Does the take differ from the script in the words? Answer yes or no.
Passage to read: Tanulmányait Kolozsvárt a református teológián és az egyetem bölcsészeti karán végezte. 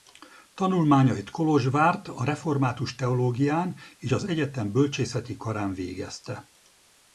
no